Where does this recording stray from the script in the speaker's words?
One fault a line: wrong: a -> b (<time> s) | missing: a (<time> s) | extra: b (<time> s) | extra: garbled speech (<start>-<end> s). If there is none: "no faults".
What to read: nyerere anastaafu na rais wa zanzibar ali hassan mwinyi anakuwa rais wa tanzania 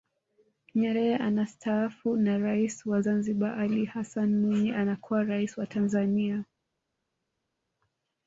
no faults